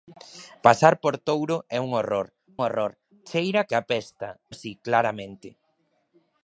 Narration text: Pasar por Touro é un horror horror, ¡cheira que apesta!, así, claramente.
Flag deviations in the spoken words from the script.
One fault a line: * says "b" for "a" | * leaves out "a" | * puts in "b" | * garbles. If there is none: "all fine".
all fine